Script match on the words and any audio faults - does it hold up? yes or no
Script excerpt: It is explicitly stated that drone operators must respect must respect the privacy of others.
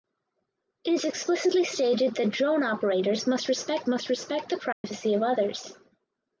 no